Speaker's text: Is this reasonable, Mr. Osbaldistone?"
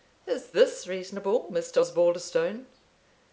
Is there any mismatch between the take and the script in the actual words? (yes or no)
no